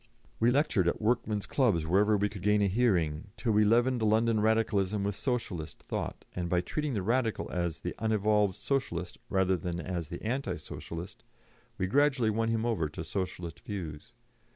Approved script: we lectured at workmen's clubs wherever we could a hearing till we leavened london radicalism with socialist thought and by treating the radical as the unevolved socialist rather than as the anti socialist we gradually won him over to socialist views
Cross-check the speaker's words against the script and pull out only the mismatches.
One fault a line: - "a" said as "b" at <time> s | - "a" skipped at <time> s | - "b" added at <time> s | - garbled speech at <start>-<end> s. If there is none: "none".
- "gain" added at 2.4 s